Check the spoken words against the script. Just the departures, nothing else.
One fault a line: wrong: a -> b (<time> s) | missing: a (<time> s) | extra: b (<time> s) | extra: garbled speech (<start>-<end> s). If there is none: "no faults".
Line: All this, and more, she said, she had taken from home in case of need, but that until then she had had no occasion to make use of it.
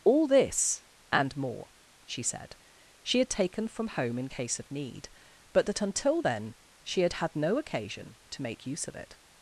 no faults